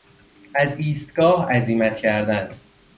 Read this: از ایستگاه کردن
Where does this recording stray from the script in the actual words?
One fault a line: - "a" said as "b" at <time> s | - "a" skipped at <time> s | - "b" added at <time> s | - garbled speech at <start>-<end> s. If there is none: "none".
- "عزیمت" added at 1.5 s